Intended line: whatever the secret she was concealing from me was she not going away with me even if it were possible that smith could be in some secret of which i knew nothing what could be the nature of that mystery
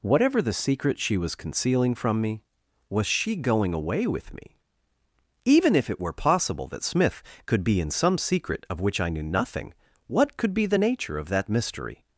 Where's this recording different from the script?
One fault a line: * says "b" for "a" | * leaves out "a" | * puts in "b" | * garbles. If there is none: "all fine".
* leaves out "not"